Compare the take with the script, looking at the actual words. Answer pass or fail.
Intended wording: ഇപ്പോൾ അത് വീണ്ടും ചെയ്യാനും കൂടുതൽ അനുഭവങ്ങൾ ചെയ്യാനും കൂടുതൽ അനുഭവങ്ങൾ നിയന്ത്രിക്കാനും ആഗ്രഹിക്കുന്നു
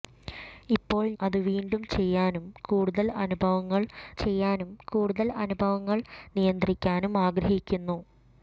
pass